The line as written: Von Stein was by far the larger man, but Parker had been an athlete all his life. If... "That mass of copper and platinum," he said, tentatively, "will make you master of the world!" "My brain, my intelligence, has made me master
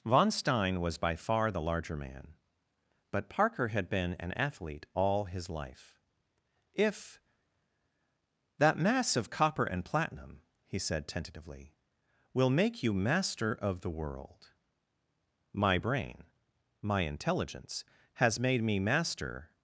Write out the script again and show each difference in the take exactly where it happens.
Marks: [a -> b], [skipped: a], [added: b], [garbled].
Von Stein was by far the larger man, but Parker had been an athlete all his life. If... "That mass of copper and platinum," he said, tentatively, "will make you master of the world!" "My brain, my intelligence, has made me master